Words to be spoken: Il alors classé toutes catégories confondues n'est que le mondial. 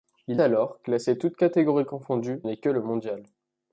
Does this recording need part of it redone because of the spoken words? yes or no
no